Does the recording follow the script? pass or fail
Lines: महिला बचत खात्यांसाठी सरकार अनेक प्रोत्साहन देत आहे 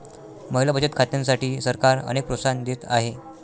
pass